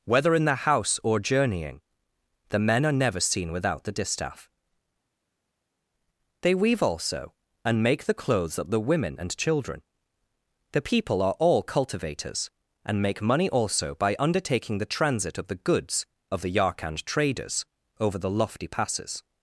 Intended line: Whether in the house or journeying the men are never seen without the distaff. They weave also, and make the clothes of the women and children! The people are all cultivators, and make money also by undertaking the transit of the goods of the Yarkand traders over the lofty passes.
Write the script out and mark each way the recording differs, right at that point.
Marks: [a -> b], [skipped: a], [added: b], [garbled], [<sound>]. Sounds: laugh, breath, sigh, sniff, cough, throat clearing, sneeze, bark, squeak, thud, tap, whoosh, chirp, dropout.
Whether in the house or journeying the men are never seen without the distaff. They weave also, and make the clothes of the women and children! The people are all cultivators, and make money also by undertaking the transit of the goods of the Yarkand traders over the lofty passes.